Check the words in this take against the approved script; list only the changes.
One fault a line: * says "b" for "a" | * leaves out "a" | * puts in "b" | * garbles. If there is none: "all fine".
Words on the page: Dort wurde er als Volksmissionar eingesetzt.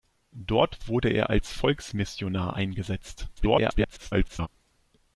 * garbles